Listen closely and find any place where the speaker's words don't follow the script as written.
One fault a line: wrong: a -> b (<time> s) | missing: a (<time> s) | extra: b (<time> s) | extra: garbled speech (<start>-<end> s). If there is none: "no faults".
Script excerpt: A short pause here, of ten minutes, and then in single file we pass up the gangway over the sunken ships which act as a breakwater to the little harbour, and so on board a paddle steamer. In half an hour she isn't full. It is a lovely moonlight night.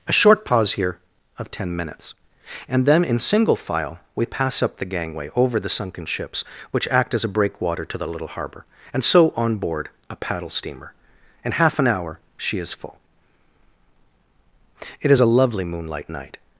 wrong: isn't -> is (12.6 s)